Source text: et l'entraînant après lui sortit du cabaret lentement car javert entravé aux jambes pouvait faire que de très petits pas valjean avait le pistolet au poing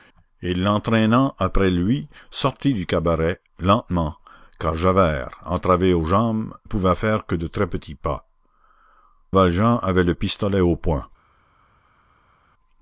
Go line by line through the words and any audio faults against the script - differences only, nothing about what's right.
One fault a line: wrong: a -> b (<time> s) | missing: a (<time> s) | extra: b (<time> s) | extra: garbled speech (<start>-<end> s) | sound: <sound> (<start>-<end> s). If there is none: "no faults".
no faults